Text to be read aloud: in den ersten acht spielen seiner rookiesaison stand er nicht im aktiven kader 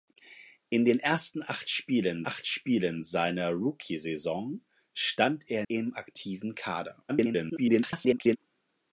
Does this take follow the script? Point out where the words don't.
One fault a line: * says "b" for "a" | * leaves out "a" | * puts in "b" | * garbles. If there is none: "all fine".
* puts in "acht spielen"
* leaves out "nicht"
* garbles